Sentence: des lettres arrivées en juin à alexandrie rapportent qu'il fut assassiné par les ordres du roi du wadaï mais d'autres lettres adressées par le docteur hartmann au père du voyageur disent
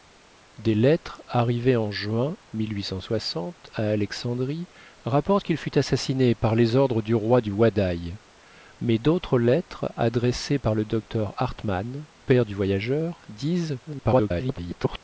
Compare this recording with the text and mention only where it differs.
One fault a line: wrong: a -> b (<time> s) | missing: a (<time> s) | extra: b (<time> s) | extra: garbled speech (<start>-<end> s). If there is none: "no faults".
missing: au (12.1 s)
extra: garbled speech (13.9-15.0 s)